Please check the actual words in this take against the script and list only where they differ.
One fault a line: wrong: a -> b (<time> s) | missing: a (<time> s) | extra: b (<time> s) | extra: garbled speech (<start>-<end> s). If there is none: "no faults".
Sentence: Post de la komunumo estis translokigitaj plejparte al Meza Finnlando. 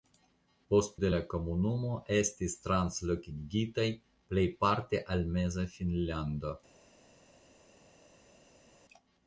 no faults